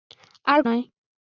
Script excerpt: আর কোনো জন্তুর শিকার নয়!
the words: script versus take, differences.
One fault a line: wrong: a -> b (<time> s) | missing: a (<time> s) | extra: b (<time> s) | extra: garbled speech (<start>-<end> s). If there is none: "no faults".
missing: কোনো জন্তুর শিকার (0.6 s)